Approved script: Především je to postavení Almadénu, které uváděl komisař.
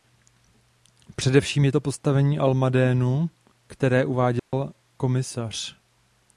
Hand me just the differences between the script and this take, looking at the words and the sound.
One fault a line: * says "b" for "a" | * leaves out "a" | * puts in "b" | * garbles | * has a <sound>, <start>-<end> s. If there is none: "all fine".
* has a dropout, 4.4-4.5 s